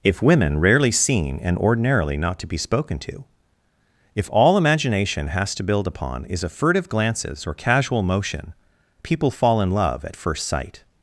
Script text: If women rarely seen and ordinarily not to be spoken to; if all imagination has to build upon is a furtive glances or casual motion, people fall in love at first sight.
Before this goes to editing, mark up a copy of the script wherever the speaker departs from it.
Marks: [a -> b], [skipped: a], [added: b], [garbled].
If women rarely seen and ordinarily not to be spoken to; if all imagination has to build upon is a furtive glances or casual motion, people fall in love at first sight.